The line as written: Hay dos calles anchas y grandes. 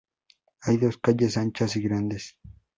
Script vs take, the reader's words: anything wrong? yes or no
no